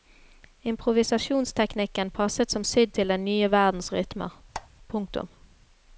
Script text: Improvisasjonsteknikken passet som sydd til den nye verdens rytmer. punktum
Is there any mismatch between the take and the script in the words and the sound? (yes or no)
yes